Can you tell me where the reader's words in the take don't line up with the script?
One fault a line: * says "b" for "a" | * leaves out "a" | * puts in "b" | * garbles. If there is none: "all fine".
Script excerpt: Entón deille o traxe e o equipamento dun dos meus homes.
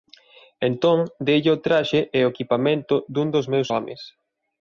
all fine